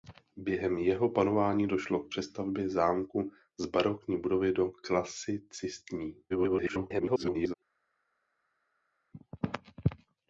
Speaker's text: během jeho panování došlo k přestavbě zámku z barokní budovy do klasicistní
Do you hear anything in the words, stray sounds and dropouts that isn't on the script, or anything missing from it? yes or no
yes